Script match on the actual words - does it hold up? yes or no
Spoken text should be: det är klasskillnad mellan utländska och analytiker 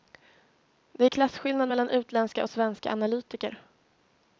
no